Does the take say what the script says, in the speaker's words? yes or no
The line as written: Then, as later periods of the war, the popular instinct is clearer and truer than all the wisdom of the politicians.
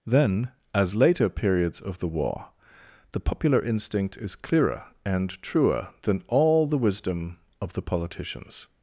yes